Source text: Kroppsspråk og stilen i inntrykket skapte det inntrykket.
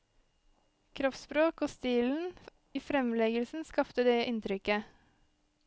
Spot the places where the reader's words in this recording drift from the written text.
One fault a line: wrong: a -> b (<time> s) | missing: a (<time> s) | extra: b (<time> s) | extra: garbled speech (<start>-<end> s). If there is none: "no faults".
wrong: inntrykket -> fremleggelsen (2.8 s)